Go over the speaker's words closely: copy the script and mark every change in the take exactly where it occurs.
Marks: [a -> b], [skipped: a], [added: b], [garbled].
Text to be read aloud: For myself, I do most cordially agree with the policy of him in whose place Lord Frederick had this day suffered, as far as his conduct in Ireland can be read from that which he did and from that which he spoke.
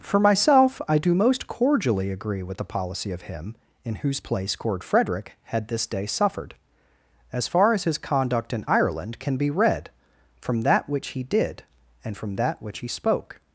For myself, I do most cordially agree with the policy of him in whose place [Lord -> Cord] Frederick had this day suffered, as far as his conduct in Ireland can be read from that which he did and from that which he spoke.